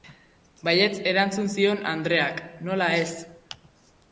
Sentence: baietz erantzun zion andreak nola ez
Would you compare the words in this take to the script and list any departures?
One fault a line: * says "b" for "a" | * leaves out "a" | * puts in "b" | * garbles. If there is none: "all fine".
all fine